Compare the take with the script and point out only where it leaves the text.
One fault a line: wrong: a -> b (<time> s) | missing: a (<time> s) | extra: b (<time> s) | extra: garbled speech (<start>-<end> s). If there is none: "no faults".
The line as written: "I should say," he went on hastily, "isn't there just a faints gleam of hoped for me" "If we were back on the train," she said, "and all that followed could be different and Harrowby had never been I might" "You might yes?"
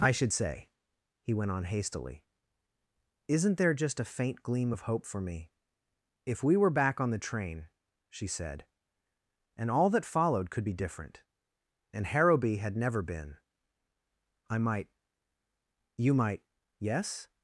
wrong: faints -> faint (4.0 s)
wrong: hoped -> hope (4.8 s)